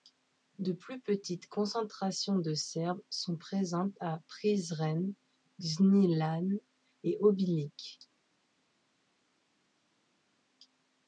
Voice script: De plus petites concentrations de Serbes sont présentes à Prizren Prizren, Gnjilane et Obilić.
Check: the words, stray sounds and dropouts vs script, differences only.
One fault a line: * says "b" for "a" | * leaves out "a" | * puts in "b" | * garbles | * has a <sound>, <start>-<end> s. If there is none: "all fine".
* leaves out "Prizren"